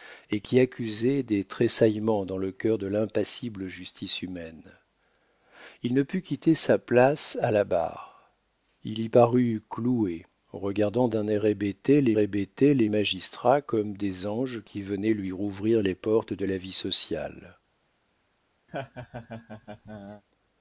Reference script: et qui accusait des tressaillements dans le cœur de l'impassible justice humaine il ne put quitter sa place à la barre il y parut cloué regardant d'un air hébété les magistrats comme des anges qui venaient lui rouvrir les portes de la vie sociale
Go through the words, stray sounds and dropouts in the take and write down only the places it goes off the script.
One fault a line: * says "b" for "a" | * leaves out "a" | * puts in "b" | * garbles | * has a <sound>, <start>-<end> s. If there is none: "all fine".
* puts in "hébété les"
* has a laugh, 18.7-20.2 s